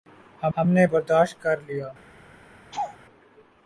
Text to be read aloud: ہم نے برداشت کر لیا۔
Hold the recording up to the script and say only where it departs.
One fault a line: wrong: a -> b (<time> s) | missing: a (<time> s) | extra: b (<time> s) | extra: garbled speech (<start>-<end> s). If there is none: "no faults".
extra: ہم (0.6 s)